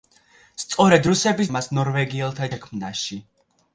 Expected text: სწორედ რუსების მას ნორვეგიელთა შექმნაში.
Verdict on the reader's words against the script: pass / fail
pass